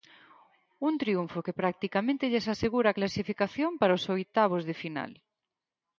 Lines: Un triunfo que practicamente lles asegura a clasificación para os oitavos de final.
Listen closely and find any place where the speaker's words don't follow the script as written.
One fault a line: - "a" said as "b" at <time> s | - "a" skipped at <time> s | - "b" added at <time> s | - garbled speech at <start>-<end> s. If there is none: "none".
none